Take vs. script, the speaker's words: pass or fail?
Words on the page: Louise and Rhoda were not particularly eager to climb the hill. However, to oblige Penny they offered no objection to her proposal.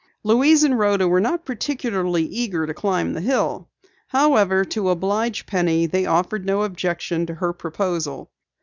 pass